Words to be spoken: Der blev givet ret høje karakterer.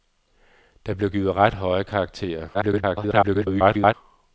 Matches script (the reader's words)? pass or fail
fail